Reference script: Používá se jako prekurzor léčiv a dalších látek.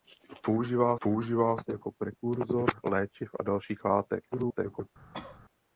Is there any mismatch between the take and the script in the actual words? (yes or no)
yes